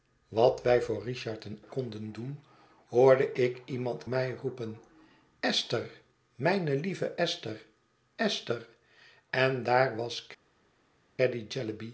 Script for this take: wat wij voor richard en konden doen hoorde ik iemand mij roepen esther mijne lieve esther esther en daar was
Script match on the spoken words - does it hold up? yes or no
yes